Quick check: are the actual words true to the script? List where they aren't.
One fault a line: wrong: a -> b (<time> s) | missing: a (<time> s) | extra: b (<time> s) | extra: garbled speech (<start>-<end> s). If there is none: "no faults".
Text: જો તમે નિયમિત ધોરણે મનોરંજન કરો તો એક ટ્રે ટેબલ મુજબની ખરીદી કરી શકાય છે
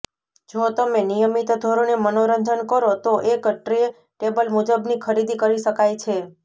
no faults